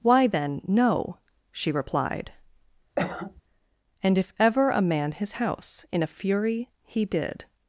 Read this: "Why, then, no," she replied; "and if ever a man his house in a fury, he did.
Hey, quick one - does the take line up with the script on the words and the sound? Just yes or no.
no